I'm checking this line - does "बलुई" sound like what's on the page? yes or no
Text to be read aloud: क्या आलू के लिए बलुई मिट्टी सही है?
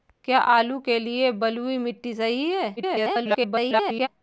yes